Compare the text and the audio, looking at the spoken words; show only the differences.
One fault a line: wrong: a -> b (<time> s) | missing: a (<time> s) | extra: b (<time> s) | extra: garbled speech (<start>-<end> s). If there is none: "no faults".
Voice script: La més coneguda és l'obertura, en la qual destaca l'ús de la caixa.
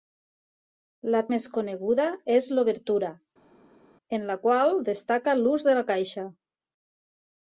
no faults